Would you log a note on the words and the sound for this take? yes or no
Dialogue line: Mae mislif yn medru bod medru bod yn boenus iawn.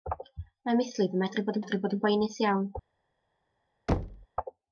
yes